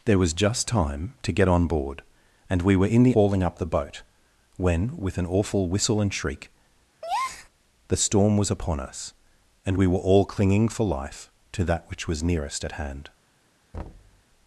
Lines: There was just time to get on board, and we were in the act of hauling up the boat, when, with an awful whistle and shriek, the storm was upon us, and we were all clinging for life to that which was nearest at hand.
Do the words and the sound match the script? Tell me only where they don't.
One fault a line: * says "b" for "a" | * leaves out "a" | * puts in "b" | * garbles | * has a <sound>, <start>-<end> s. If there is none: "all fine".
* leaves out "act of"
* has a breath, 7.0-7.5 s
* has a thud, 13.7-14.2 s